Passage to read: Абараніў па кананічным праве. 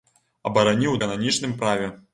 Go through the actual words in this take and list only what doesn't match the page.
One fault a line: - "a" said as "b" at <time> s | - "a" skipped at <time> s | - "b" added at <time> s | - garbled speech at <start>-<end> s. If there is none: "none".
none